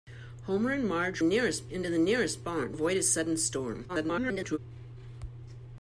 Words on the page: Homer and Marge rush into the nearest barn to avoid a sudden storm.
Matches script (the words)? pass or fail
fail